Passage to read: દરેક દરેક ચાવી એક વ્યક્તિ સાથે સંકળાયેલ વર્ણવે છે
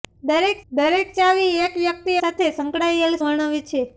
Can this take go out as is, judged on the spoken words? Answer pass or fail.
pass